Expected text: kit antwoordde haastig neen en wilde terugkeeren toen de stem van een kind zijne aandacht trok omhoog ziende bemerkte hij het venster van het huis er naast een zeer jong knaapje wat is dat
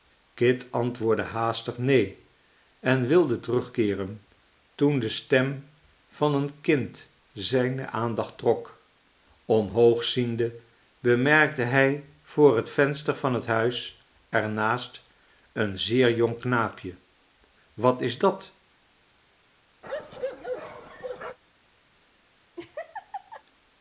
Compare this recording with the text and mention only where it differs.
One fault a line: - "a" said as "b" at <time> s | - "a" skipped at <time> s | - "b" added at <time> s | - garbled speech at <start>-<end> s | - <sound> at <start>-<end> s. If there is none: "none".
- "voor" added at 12.2 s
- bark at 19.8-21.4 s
- laugh at 22.6-23.4 s